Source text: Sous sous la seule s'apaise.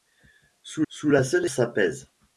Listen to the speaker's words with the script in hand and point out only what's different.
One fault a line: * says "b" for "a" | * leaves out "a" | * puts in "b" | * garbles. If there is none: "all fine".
all fine